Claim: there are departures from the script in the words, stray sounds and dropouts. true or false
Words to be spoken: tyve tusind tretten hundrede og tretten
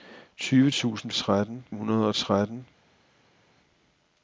false